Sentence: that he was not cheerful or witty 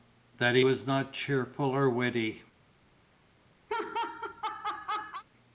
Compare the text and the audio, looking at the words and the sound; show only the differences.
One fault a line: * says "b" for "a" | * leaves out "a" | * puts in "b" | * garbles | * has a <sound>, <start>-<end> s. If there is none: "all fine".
* has a laugh, 3.7-5.2 s